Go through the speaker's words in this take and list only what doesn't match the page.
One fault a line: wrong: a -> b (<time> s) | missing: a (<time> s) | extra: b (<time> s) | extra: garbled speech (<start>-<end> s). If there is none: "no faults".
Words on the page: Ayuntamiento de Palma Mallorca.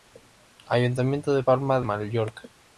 no faults